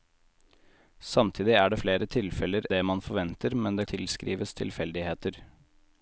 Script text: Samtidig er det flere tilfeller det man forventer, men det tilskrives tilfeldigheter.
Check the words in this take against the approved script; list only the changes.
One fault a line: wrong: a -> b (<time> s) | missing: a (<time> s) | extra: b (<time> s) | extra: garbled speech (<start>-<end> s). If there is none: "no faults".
no faults